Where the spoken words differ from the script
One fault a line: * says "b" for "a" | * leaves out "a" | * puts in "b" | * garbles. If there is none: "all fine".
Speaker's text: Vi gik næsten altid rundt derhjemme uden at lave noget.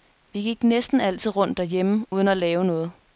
all fine